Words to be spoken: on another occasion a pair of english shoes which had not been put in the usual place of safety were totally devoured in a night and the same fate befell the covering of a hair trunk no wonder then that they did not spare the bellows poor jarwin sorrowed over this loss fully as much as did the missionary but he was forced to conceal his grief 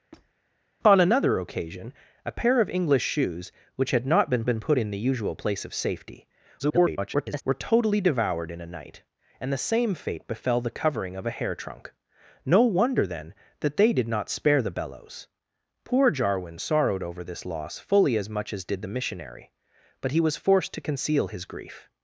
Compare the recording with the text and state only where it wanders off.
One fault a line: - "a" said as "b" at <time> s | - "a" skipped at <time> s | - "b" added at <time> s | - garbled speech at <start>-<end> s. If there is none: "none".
- "been" added at 4.5 s
- garbled speech at 6.6-7.4 s